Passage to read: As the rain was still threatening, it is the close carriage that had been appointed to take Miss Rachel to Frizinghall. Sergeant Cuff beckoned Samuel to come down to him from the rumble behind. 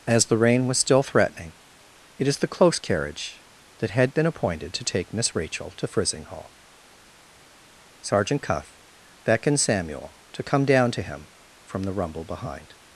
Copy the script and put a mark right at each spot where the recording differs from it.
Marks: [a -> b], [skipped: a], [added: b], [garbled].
As the rain was still threatening, it is the close carriage that had been appointed to take Miss Rachel to Frizinghall. Sergeant Cuff beckoned Samuel to come down to him from the rumble behind.